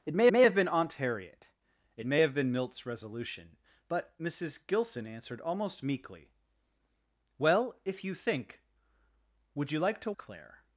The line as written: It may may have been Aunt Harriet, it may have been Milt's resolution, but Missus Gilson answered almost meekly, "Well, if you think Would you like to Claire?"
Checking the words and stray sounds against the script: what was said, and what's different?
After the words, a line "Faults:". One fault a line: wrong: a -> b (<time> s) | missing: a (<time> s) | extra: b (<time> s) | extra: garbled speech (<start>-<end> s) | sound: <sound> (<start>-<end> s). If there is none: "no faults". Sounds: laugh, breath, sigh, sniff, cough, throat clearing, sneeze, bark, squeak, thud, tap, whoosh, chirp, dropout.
It may may have been Aunt Harriet, it may have been Milt's resolution, but Missus Gilson answered almost meekly, "Well, if you think Would you like to Claire?"
Faults:
no faults